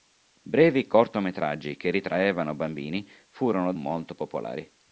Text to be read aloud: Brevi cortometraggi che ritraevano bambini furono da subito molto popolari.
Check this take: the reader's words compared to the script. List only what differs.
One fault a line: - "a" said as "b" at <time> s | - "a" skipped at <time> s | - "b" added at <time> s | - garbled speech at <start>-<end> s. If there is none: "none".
- "da subito" skipped at 3.7 s